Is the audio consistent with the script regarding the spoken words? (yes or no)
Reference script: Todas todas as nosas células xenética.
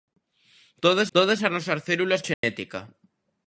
yes